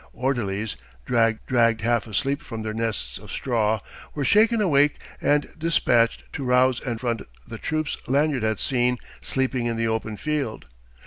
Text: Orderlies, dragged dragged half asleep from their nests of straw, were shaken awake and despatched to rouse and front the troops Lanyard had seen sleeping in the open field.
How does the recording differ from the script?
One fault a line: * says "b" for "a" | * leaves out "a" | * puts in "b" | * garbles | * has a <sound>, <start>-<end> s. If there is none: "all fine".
all fine